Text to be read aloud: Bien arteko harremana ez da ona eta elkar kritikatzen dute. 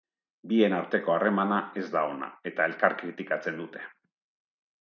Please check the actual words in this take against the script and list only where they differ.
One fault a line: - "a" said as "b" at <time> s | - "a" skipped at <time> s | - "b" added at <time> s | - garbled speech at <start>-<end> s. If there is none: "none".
none